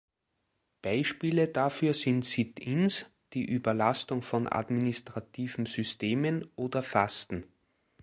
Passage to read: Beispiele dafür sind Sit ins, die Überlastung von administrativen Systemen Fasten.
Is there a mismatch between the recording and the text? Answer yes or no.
yes